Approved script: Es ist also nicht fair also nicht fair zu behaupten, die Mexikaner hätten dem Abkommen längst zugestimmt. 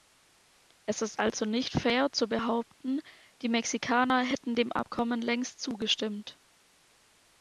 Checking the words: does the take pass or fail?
fail